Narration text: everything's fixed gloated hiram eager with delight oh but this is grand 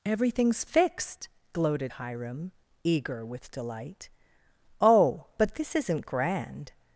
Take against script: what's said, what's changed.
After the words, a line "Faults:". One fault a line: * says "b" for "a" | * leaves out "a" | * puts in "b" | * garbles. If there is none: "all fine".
everything's fixed gloated hiram eager with delight oh but this isn't grand
Faults:
* says "isn't" for "is"